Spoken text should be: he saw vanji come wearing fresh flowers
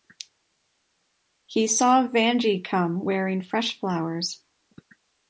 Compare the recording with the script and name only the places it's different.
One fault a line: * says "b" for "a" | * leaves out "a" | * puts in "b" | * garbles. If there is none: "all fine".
all fine